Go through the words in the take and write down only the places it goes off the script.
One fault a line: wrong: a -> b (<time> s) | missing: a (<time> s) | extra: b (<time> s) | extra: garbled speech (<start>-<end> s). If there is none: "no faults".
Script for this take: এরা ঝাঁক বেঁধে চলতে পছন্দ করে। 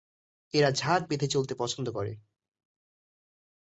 no faults